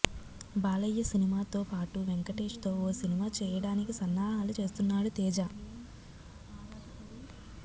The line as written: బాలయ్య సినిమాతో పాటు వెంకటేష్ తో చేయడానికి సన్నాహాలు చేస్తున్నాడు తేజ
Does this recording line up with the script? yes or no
no